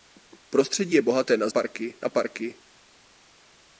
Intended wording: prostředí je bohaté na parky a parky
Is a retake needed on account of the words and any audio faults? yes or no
no